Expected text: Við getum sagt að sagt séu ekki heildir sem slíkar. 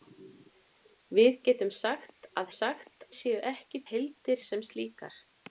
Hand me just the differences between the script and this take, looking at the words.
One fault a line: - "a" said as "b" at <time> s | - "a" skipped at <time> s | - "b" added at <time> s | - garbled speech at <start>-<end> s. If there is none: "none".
none